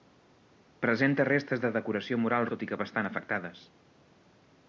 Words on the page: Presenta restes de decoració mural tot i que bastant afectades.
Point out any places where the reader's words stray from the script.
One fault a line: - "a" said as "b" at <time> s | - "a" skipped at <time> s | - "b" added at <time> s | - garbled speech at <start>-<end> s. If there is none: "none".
none